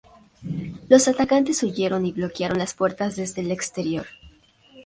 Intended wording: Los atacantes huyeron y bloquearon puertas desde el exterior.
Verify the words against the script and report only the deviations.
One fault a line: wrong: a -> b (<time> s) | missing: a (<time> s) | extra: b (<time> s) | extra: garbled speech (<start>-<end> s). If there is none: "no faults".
extra: las (2.6 s)